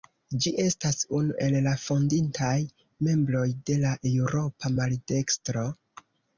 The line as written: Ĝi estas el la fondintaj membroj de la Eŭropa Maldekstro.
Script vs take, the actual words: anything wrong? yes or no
yes